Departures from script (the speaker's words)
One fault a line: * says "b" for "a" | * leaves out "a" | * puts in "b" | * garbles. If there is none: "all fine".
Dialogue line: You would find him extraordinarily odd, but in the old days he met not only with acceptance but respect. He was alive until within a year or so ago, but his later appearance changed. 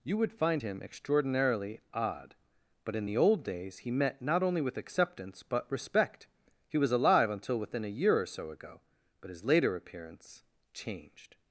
all fine